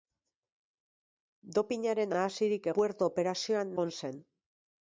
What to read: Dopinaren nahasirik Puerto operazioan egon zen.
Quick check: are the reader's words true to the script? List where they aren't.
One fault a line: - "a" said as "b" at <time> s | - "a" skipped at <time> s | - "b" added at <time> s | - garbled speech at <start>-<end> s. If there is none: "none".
none